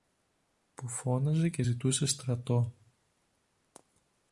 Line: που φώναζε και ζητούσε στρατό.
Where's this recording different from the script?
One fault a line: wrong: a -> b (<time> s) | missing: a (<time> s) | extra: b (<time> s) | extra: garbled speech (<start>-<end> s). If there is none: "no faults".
no faults